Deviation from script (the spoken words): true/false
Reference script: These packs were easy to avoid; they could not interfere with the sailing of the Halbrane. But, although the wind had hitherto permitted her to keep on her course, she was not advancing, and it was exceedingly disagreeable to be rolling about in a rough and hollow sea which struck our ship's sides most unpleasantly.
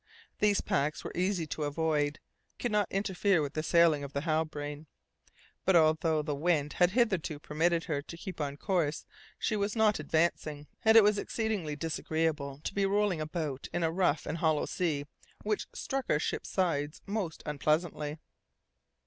true